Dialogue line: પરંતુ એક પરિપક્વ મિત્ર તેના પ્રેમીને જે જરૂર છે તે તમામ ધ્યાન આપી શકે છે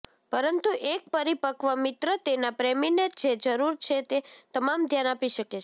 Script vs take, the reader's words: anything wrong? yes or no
no